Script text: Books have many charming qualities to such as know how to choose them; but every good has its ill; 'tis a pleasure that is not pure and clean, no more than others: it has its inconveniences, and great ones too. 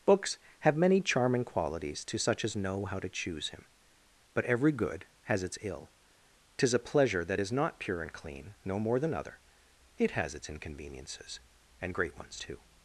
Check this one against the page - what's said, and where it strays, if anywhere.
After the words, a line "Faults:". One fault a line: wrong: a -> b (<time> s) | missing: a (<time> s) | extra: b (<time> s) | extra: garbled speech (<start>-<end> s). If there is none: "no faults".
Books have many charming qualities to such as know how to choose him; but every good has its ill; 'tis a pleasure that is not pure and clean, no more than other: it has its inconveniences, and great ones too.
Faults:
wrong: them -> him (3.5 s)
wrong: others -> other (9.1 s)